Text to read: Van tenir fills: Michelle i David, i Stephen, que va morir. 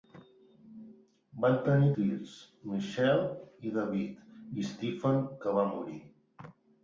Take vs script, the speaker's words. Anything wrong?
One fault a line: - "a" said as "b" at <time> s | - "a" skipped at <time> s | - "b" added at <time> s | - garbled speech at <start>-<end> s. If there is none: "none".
none